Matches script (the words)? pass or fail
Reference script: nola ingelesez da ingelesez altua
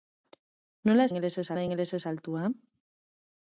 pass